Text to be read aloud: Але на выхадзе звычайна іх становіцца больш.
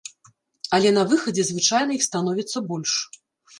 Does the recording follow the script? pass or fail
pass